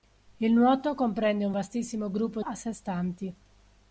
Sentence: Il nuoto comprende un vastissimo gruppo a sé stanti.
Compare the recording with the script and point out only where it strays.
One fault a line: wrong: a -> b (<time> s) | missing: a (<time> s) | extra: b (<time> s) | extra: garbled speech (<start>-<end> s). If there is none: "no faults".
no faults